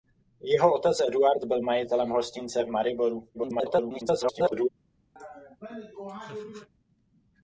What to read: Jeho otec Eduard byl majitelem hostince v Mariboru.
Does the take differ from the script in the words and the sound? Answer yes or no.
yes